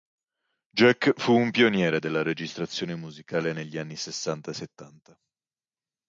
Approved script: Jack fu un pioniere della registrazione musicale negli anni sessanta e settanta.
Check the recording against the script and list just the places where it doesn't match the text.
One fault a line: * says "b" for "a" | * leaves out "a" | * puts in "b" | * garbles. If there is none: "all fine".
all fine